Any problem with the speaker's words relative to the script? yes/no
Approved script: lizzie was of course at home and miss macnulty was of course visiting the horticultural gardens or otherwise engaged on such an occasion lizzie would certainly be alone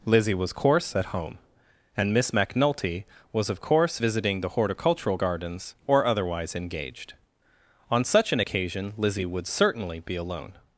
yes